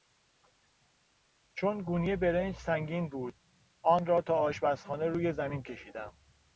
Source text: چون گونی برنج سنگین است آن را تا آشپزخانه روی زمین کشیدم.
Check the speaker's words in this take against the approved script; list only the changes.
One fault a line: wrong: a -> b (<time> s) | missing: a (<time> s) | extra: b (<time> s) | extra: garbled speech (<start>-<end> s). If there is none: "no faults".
wrong: است -> بود (3.1 s)